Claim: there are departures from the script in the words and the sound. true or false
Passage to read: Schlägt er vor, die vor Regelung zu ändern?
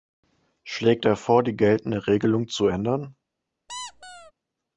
true